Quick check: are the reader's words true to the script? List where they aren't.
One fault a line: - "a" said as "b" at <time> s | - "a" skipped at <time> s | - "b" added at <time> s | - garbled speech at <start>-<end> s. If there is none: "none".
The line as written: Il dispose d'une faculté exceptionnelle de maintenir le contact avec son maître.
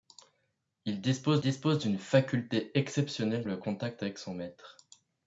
- "dispose" added at 1.4 s
- "de maintenir" skipped at 3.4 s